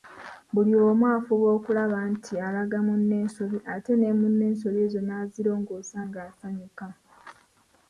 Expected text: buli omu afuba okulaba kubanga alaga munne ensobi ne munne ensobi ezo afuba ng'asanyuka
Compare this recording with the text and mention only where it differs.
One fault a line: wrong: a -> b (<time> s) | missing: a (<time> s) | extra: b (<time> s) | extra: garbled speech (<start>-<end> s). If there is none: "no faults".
wrong: kubanga -> nti (2.1 s)
extra: ate (3.7 s)
wrong: afuba -> nazirongoosa (5.1 s)